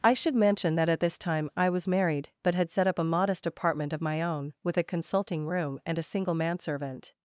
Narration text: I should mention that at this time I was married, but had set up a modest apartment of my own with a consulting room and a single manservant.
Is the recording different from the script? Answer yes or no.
no